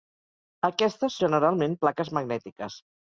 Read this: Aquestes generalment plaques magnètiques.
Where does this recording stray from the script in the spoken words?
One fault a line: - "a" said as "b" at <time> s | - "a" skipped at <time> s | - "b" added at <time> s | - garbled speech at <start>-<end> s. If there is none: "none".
none